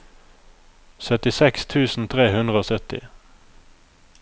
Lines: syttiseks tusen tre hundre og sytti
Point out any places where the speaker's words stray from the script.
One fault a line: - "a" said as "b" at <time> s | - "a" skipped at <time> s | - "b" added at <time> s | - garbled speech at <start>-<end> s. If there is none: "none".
none